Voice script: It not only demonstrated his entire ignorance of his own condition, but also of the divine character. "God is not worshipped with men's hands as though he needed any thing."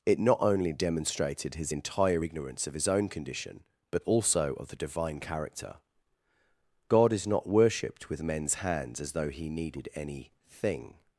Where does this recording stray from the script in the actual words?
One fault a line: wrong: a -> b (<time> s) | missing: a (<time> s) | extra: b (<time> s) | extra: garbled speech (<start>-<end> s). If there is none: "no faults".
no faults